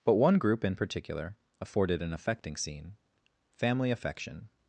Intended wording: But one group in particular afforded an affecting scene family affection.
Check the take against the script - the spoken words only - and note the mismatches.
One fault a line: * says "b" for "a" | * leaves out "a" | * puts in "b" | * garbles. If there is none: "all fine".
all fine